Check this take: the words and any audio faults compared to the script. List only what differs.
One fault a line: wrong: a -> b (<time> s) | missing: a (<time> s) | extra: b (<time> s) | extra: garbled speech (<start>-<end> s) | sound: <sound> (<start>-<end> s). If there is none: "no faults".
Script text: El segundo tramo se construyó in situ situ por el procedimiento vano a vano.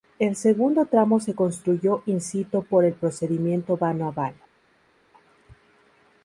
missing: situ (2.6 s)